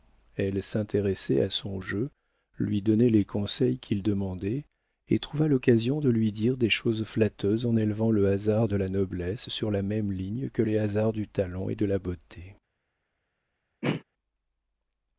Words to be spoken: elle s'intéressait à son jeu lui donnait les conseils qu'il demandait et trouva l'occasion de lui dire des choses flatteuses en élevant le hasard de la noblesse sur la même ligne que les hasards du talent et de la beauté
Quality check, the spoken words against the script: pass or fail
pass